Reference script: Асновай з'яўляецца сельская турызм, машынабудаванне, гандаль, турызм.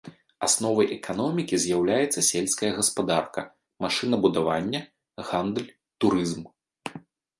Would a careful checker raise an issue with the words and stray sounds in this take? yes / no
yes